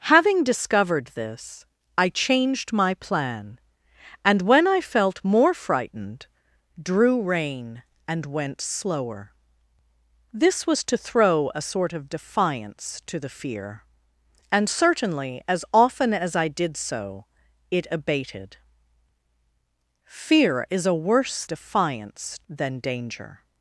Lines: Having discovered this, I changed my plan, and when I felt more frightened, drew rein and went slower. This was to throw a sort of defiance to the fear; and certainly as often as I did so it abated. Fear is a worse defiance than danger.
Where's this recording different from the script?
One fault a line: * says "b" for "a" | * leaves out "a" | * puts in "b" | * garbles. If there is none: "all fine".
all fine